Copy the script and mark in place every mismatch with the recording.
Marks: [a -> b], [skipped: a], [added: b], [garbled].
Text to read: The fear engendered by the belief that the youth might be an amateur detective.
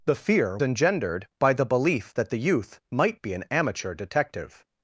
The fear engendered by the belief that the youth might be an amateur detective.